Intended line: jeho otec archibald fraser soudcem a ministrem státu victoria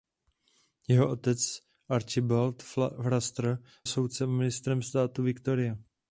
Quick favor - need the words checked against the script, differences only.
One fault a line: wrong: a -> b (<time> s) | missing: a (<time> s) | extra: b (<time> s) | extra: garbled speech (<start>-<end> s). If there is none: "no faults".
no faults